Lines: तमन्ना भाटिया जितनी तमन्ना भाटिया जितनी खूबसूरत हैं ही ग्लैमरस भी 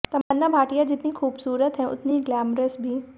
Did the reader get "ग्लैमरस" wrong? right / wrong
right